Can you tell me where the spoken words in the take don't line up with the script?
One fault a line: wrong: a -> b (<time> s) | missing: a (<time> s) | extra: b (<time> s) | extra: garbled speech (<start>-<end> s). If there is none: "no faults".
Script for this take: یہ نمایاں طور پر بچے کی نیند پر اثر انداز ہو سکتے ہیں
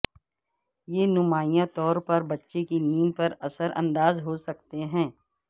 no faults